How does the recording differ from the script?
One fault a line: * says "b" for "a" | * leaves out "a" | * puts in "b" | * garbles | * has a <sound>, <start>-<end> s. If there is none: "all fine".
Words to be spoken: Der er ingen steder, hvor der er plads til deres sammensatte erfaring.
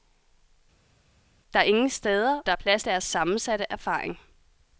* leaves out "hvor"
* leaves out "til"